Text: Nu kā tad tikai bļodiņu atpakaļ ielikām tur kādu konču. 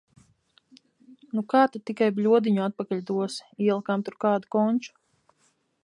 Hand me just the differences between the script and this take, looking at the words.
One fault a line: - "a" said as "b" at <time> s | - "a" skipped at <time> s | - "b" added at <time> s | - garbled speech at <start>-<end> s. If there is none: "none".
- "dosi" added at 3.1 s